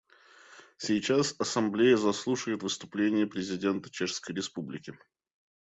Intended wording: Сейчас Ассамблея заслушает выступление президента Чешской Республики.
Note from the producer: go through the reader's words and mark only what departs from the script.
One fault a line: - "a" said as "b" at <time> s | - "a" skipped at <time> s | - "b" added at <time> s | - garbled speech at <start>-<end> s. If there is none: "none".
none